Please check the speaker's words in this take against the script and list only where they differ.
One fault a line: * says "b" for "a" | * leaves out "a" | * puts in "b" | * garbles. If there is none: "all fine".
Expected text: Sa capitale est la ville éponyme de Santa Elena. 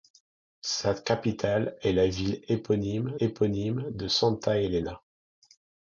* puts in "éponyme"